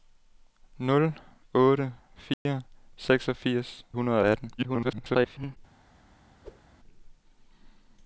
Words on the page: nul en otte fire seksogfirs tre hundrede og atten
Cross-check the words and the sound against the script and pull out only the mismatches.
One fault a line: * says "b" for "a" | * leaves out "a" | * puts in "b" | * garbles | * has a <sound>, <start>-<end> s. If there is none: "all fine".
* leaves out "en"
* has a dropout, 2.3-2.5 s
* leaves out "tre"
* garbles
* has a whoosh, 6.4-6.6 s